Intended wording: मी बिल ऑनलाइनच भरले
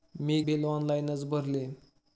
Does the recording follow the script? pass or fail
pass